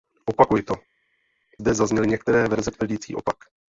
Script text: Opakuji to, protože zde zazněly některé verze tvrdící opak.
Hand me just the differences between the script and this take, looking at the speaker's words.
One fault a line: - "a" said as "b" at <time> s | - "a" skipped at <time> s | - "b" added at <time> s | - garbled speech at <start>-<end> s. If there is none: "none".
- "protože" skipped at 0.7 s